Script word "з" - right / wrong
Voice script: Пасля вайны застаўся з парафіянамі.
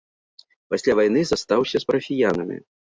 right